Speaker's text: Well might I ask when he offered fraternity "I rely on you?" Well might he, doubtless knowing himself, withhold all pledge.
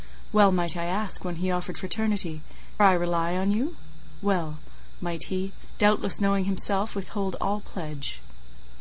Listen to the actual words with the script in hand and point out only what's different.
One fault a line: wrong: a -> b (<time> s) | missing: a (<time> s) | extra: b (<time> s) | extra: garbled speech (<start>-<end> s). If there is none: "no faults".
no faults